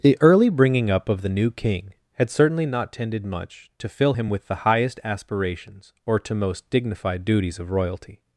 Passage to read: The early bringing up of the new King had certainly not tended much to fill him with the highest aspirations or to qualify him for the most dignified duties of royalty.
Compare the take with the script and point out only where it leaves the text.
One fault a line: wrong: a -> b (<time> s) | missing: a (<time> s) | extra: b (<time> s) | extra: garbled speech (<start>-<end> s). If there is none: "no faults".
missing: qualify him for the (6.4 s)